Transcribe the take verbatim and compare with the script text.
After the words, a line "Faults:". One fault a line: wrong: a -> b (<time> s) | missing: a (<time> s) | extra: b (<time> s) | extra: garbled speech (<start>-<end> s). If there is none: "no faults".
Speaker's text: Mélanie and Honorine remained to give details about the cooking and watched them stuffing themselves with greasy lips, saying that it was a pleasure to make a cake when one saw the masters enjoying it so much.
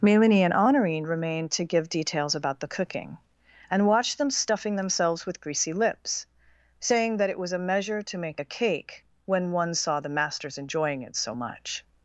Mélanie and Honorine remained to give details about the cooking and watched them stuffing themselves with greasy lips, saying that it was a measure to make a cake when one saw the masters enjoying it so much.
Faults:
wrong: pleasure -> measure (7.6 s)